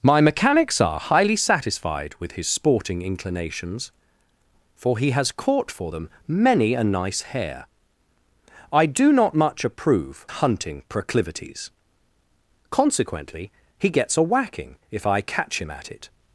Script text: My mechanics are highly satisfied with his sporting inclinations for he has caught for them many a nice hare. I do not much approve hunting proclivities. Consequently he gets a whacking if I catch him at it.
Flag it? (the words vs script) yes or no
no